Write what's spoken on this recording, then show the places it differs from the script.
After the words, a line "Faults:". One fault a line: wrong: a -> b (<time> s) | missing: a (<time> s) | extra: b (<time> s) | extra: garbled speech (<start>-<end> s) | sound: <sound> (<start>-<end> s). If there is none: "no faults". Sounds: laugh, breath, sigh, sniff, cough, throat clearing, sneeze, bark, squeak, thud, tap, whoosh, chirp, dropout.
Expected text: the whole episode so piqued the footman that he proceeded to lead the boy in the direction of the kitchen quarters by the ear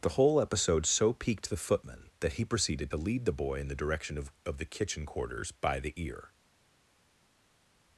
the whole episode so piqued the footman that he proceeded to lead the boy in the direction of of the kitchen quarters by the ear
Faults:
extra: of (4.5 s)